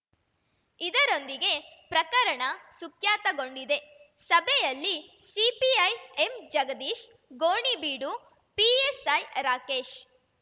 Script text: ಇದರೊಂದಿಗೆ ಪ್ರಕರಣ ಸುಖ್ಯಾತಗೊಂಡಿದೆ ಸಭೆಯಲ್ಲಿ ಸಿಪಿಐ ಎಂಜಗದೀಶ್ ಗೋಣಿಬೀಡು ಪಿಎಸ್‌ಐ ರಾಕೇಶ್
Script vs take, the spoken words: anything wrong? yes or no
no